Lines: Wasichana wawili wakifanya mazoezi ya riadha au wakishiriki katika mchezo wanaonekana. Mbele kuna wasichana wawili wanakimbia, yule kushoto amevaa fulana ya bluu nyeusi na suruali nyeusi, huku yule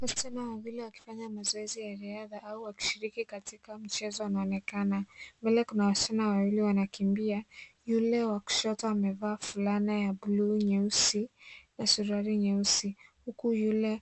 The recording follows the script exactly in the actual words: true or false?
false